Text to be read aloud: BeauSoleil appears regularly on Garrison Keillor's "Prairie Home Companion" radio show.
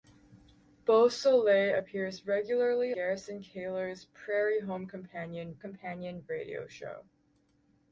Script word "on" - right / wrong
wrong